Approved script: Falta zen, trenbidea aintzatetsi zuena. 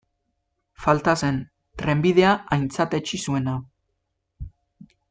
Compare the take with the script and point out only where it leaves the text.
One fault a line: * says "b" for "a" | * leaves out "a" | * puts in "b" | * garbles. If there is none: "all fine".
all fine